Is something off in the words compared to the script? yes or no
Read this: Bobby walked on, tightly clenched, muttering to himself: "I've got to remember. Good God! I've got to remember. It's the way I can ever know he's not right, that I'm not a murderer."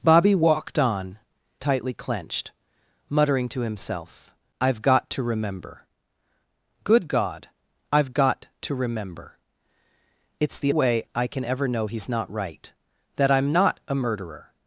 no